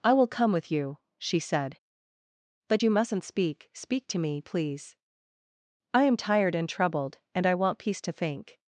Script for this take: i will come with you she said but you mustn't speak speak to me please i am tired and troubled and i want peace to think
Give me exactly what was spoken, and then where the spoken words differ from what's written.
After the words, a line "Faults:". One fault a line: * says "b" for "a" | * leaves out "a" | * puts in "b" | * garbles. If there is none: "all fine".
i will come with you she said but you mustn't speak speak to me please i am tired and troubled and i want peace to think
Faults:
all fine